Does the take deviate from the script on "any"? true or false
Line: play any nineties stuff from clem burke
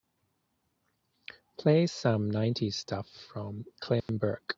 true